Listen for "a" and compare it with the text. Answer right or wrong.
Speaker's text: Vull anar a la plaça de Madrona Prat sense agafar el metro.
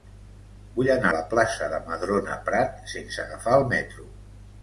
wrong